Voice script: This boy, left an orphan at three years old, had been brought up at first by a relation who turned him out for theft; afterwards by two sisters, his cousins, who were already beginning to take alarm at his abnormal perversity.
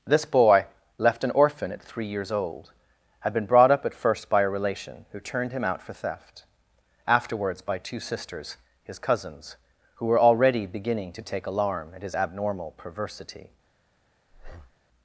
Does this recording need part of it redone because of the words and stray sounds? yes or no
yes